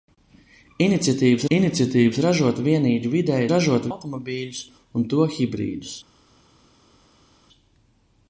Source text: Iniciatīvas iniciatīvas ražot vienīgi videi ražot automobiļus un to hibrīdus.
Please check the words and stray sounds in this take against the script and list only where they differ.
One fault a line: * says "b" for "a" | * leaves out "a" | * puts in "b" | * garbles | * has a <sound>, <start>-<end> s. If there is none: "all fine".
all fine